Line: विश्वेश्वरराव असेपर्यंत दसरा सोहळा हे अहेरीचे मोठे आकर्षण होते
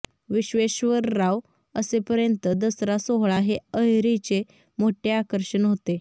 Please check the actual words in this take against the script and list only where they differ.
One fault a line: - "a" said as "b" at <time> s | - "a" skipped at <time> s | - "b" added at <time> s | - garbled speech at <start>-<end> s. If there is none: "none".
none